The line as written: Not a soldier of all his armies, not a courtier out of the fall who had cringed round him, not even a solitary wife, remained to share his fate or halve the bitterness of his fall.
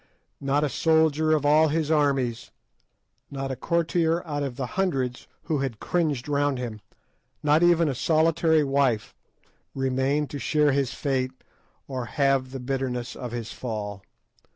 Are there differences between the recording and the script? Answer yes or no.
yes